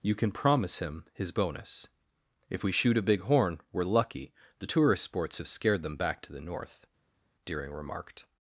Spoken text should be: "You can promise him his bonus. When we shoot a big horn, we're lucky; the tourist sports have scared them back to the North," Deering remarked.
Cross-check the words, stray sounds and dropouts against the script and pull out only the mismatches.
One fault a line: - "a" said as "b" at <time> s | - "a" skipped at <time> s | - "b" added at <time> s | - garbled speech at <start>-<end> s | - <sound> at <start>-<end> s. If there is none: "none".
- "When" said as "If" at 2.5 s